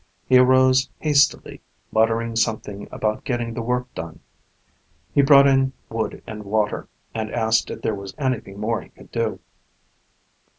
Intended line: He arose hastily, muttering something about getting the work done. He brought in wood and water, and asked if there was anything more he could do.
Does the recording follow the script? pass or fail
pass